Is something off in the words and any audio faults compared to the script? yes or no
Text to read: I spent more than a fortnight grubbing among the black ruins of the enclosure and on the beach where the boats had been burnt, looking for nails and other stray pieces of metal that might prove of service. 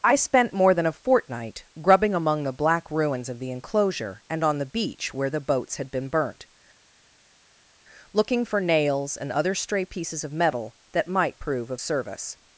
no